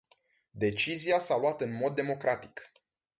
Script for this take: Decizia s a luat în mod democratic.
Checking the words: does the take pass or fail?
pass